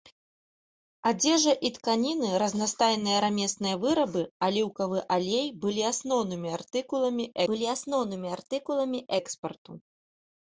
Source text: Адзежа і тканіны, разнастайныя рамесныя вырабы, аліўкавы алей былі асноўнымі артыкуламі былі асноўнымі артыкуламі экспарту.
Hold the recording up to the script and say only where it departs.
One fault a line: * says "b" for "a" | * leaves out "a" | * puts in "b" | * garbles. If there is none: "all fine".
all fine